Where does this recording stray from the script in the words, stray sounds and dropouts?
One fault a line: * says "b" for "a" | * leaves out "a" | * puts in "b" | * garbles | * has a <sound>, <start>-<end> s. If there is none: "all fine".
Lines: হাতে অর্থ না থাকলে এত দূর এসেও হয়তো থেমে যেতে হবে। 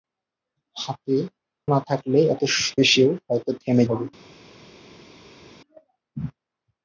* leaves out "অর্থ"
* leaves out "দূর"
* leaves out "যেতে"